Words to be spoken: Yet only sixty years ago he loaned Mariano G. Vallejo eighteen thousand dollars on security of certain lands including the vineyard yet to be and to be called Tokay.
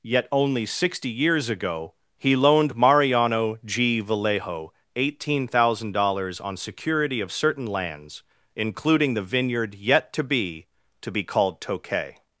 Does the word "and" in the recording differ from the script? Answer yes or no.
yes